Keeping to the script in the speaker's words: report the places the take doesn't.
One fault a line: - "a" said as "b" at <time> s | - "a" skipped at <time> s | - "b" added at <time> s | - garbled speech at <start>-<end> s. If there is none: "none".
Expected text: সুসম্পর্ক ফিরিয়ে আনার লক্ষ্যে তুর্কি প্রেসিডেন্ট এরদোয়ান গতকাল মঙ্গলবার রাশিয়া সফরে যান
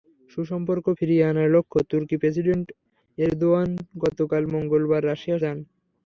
- "সফরে" skipped at 5.4 s